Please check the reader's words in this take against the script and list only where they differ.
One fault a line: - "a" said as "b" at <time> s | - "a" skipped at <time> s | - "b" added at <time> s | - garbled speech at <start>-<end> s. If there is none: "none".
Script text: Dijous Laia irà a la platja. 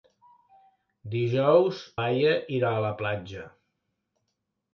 none